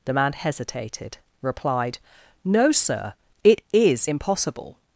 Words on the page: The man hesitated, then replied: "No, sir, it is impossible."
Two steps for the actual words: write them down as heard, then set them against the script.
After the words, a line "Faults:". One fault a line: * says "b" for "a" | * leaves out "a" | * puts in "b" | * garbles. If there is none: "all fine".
The man hesitated, replied: "No, sir, it is impossible."
Faults:
* leaves out "then"